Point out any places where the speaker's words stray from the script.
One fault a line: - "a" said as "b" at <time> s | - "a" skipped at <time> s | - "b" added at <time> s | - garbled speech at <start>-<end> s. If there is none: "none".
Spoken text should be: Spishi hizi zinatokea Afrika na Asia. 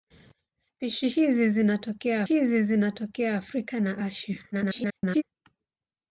- "hizi zinatokea" added at 2.2 s
- garbled speech at 4.5-5.2 s